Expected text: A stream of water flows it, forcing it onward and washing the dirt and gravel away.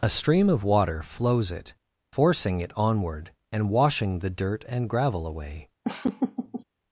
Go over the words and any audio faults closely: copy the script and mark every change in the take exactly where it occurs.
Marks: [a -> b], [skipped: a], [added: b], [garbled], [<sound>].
A stream of water flows it, forcing it onward and washing the dirt and gravel away. [laugh]